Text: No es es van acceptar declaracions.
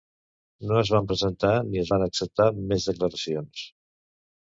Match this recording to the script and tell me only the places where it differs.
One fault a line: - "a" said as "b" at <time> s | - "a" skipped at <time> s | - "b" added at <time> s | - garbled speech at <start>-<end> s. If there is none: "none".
- "van presentar ni" added at 0.9 s
- "més" added at 2.7 s